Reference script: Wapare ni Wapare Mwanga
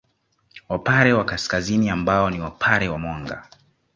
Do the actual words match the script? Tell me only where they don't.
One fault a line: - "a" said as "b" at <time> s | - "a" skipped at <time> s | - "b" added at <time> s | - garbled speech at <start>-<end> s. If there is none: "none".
- "wa Kaskazini ambao" added at 1.1 s
- "wa" added at 2.9 s